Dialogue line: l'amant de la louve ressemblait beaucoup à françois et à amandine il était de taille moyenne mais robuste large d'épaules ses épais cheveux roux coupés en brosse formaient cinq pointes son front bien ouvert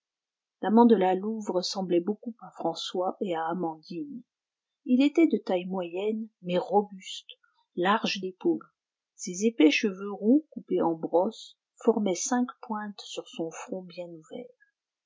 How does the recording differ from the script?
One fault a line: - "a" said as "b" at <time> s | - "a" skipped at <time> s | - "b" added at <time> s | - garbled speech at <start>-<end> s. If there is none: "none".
- "sur" added at 13.0 s